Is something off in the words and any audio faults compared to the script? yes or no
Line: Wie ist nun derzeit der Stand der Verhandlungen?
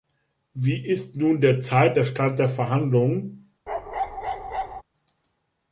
yes